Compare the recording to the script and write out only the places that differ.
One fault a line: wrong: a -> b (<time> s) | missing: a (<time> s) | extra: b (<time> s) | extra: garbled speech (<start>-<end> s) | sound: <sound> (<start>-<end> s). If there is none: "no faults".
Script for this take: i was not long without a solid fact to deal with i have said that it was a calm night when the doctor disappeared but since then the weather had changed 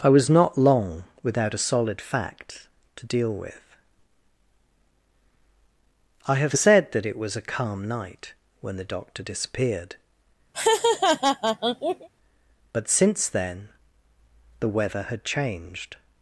sound: laugh (10.5-12.1 s)